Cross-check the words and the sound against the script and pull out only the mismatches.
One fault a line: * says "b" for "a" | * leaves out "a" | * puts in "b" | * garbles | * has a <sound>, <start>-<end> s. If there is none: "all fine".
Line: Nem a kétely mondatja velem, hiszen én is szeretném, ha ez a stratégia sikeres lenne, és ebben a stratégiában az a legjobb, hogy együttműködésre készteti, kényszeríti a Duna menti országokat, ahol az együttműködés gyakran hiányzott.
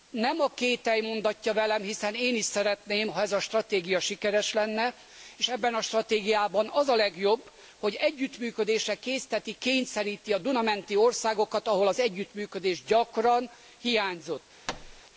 * has a thud, 14.7-15.0 s